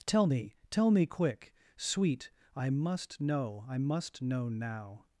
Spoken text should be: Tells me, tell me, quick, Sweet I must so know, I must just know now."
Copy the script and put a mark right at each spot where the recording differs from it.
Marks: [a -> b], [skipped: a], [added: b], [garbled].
[Tells -> Tell] me, tell me, quick, Sweet I must [skipped: so] know, I must [skipped: just] know now."